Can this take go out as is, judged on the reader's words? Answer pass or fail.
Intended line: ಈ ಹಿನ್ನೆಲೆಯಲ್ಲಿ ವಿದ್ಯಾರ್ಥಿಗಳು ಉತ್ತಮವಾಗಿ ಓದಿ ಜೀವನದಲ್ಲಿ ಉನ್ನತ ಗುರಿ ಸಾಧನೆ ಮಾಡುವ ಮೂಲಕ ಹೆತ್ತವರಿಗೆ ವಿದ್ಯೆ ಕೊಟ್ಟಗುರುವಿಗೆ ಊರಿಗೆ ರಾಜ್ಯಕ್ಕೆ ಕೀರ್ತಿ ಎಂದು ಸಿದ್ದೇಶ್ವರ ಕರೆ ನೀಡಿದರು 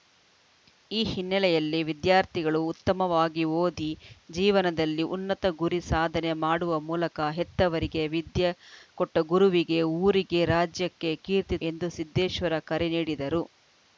pass